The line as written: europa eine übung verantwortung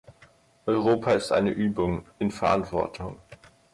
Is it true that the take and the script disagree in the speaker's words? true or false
true